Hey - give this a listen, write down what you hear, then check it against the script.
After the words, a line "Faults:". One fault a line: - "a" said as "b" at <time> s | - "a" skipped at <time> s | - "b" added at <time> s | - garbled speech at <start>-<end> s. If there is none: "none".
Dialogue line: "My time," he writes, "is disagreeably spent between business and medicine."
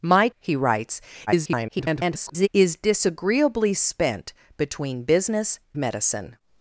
"My," he writes, [garbled] "is disagreeably spent between business medicine."
Faults:
- "time" skipped at 0.3 s
- garbled speech at 1.3-2.5 s
- "and" skipped at 5.6 s